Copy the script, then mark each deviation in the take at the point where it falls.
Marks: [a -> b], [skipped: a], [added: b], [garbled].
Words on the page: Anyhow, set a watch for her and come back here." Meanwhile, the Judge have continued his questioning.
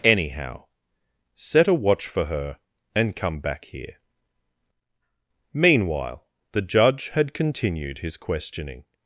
Anyhow, set a watch for her and come back here." Meanwhile, the Judge [have -> had] continued his questioning.